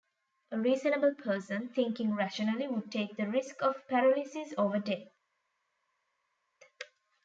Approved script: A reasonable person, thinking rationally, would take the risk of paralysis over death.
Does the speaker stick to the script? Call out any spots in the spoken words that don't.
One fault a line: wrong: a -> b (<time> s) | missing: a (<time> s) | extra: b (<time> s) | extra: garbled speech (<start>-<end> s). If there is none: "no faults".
no faults